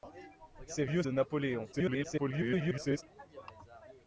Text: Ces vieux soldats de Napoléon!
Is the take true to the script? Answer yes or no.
no